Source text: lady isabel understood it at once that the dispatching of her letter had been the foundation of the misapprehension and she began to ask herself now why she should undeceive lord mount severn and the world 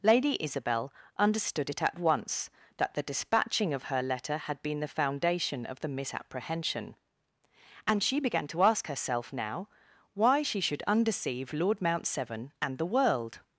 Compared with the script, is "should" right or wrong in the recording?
right